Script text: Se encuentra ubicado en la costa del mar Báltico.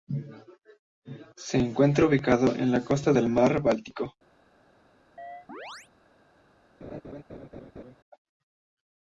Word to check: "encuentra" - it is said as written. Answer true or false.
true